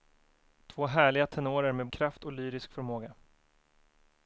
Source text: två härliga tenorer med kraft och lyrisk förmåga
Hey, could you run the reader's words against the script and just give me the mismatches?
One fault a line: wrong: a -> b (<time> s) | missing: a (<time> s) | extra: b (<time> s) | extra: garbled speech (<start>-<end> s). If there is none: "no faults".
no faults